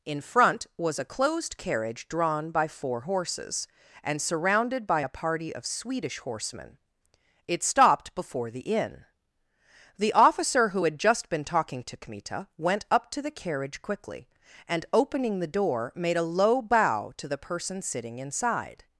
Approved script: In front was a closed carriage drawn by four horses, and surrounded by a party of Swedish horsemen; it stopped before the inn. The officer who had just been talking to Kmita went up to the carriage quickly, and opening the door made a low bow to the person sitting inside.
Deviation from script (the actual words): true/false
false